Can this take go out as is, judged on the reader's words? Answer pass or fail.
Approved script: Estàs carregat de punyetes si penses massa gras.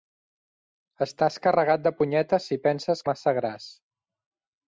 pass